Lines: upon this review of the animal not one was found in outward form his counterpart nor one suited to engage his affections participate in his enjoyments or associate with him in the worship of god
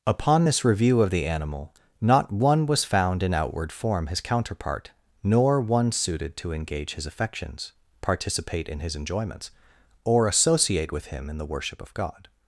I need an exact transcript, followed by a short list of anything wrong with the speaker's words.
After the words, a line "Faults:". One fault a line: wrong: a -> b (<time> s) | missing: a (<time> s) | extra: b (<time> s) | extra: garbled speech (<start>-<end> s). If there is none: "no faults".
upon this review of the animal not one was found in outward form his counterpart nor one suited to engage his affections participate in his enjoyments or associate with him in the worship of god
Faults:
no faults